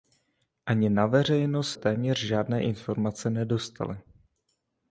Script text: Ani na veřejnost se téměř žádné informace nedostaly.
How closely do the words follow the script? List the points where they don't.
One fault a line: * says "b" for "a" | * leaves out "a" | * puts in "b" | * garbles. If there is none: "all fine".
* leaves out "se"